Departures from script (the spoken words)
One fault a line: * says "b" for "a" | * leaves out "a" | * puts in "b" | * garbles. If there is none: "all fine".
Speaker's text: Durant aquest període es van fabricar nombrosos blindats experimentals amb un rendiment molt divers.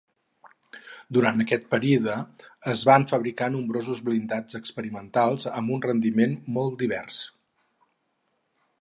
all fine